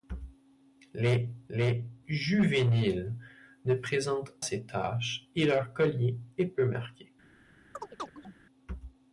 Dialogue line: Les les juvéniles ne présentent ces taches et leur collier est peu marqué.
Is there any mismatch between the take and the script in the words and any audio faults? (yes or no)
yes